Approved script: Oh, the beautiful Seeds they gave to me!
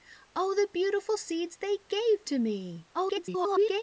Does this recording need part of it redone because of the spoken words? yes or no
yes